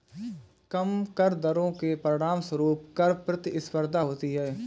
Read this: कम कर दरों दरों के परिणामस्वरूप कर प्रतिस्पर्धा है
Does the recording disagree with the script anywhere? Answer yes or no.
yes